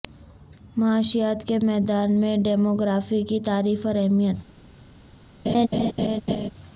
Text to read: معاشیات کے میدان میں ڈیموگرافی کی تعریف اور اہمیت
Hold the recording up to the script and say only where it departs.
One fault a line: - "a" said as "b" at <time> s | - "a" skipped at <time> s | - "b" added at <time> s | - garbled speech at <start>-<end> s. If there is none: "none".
none